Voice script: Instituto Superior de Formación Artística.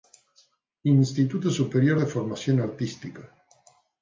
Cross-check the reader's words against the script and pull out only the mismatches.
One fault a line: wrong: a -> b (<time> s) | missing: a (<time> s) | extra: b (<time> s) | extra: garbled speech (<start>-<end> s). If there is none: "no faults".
no faults